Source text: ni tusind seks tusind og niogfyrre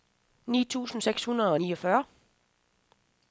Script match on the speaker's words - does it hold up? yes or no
no